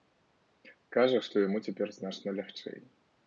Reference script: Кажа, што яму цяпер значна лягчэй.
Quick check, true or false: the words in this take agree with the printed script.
true